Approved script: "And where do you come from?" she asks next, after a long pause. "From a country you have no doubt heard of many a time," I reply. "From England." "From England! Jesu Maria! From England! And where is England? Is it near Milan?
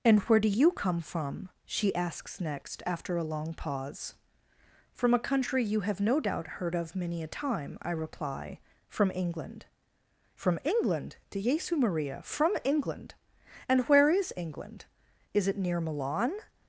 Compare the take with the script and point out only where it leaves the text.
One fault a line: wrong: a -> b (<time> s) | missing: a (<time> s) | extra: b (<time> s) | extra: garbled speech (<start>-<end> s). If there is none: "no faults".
extra: de (11.3 s)